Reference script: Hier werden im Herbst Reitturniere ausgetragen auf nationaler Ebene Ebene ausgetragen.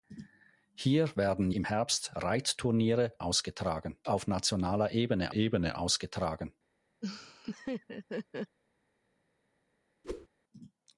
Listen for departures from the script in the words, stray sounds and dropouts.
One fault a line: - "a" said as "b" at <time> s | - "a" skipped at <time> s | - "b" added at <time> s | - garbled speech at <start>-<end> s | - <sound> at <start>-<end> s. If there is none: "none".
- laugh at 7.0-8.6 s
- whoosh at 10.0-10.3 s